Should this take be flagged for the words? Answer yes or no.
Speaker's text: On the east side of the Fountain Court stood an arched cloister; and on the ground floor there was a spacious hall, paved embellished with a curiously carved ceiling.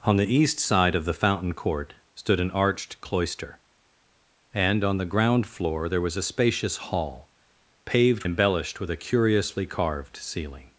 no